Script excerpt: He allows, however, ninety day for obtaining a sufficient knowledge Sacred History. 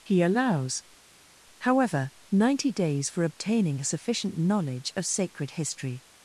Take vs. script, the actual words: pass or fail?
fail